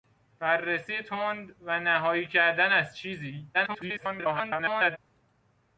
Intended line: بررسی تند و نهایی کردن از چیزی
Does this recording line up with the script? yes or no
no